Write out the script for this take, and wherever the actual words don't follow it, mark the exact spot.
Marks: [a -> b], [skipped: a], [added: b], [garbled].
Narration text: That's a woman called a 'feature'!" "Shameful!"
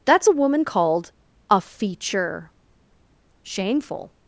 That's a woman called a 'feature'!" "Shameful!"